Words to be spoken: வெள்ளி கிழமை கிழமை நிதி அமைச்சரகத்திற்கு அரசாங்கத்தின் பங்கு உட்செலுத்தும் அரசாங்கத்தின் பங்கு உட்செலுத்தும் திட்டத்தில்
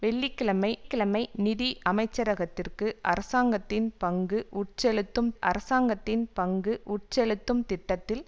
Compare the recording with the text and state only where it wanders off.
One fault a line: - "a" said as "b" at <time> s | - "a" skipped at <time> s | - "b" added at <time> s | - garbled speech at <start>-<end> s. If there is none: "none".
none